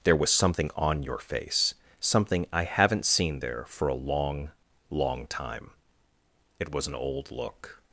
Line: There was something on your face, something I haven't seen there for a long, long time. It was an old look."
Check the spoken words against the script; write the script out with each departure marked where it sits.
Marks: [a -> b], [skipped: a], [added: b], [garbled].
There was something on your face, something I haven't seen there for a long, long time. It was an old look."